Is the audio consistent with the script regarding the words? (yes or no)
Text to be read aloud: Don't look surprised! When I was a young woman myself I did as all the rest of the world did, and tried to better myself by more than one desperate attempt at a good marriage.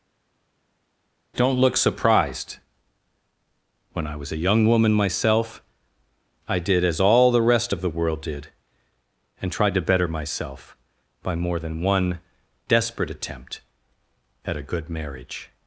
yes